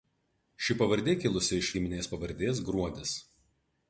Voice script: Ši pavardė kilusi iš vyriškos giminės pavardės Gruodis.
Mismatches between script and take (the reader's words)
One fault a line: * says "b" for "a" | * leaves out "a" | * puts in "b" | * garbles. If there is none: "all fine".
* leaves out "vyriškos"